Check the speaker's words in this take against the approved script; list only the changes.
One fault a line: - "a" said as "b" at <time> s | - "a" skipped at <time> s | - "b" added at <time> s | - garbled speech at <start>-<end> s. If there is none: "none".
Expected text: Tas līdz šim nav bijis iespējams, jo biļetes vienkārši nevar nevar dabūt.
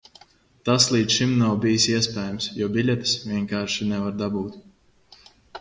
- "nevar" skipped at 4.2 s